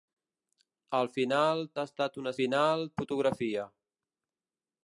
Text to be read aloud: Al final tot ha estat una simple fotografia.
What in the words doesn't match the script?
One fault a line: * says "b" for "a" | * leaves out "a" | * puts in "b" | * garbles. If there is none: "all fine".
* leaves out "tot"
* says "final" for "simple"